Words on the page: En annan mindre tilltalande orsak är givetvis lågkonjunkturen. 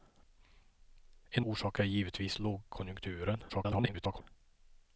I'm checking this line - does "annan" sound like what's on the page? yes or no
no